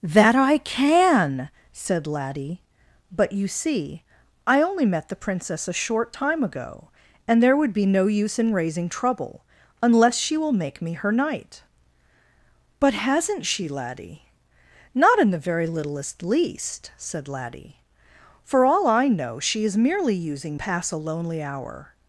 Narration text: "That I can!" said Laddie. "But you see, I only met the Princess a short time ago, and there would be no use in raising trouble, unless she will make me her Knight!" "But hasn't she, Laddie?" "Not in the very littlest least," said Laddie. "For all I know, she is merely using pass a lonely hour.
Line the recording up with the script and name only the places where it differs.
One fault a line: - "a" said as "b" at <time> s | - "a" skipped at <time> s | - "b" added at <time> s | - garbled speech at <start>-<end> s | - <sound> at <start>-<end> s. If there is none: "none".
none